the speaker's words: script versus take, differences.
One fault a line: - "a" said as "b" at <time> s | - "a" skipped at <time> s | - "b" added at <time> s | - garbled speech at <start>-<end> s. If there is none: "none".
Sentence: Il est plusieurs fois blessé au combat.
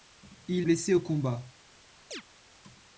- "est plusieurs fois" skipped at 0.7 s